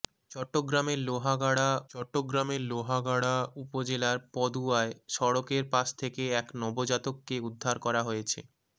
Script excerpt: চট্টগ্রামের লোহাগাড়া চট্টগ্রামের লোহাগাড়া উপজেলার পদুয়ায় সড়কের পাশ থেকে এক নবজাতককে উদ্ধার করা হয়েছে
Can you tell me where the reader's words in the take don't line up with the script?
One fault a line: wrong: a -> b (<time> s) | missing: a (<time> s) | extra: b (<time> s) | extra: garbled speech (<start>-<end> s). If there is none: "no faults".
no faults